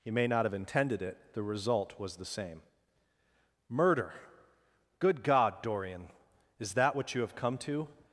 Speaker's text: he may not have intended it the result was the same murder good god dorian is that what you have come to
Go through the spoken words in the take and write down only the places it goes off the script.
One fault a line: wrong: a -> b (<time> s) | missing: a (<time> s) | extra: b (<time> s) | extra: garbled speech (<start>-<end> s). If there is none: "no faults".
no faults